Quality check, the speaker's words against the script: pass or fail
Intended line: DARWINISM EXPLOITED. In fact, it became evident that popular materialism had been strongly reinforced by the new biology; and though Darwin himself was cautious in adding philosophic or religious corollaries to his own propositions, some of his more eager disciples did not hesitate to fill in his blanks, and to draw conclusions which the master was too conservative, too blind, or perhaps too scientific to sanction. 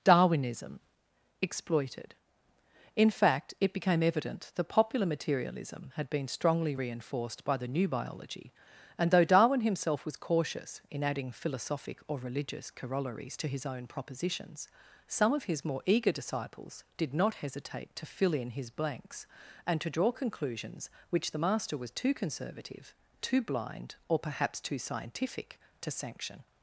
pass